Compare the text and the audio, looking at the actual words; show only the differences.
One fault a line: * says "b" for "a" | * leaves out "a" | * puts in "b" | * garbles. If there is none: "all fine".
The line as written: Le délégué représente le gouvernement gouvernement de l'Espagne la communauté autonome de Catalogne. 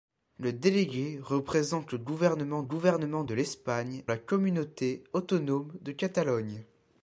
all fine